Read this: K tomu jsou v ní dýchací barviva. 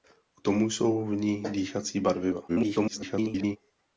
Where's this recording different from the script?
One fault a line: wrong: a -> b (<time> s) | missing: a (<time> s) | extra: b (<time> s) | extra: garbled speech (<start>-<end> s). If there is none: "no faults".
extra: garbled speech (2.5-3.6 s)